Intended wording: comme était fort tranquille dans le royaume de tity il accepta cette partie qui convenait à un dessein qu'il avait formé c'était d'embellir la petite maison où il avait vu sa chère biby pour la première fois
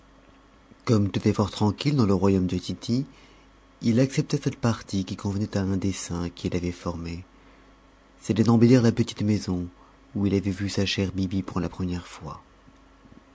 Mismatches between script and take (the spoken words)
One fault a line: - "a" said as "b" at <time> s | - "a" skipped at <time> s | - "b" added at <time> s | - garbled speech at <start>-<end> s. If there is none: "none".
none